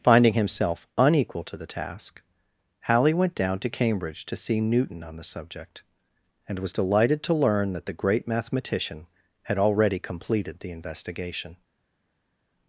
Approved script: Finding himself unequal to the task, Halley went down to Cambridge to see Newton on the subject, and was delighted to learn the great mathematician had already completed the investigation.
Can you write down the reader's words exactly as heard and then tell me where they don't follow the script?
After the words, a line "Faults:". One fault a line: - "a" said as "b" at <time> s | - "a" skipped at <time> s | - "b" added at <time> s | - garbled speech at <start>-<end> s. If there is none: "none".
Finding himself unequal to the task, Halley went down to Cambridge to see Newton on the subject, and was delighted to learn that the great mathematician had already completed the investigation.
Faults:
- "that" added at 7.7 s